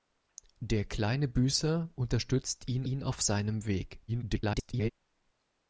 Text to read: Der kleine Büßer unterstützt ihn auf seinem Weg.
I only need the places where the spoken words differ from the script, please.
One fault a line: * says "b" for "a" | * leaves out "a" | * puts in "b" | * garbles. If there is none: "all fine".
* puts in "ihn"
* garbles